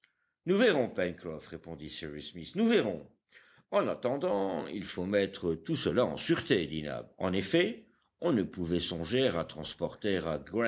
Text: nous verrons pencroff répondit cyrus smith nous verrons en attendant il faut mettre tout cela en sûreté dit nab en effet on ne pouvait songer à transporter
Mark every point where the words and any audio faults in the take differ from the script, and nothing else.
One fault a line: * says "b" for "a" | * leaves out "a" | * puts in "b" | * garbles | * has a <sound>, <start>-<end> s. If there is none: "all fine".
all fine